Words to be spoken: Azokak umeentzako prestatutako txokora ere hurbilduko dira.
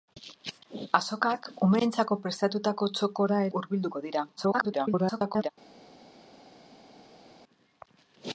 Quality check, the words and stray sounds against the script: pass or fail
fail